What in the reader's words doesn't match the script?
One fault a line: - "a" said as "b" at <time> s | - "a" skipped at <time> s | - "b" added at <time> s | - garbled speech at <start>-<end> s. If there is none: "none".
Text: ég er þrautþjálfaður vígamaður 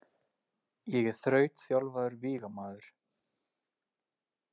none